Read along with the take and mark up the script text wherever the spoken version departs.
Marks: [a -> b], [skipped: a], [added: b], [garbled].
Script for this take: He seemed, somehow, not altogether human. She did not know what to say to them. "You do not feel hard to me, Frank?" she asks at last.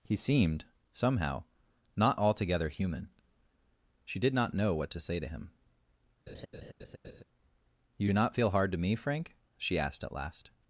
He seemed, somehow, not altogether human. She did not know what to say to [them. -> him] "You do not feel hard to me, Frank?" she [asks -> asked] at last.